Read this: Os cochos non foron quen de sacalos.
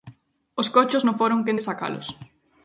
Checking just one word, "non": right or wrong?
right